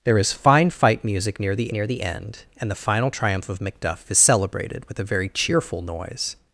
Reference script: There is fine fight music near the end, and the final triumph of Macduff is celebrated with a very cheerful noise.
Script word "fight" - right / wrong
right